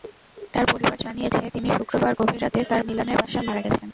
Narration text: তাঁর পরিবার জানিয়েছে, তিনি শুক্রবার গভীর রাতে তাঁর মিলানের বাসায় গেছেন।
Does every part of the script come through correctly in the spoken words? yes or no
no